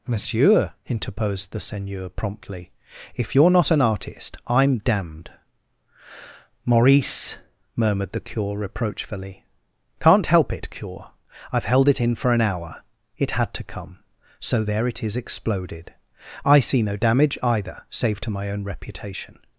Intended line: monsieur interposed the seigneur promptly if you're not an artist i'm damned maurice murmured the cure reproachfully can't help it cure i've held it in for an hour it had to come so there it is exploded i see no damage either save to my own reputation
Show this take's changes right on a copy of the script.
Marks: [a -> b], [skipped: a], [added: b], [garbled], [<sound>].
monsieur interposed the seigneur promptly if you're not an artist i'm damned maurice murmured the cure reproachfully can't help it cure i've held it in for an hour it had to come so there it is exploded i see no damage either save to my own reputation